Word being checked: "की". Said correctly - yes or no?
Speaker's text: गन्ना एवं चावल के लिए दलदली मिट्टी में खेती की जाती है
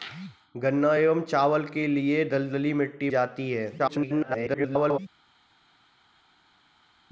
no